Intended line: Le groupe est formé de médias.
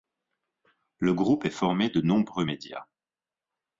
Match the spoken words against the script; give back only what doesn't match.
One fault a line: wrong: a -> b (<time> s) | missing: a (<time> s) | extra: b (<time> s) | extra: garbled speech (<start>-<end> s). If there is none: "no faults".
extra: nombreux (2.0 s)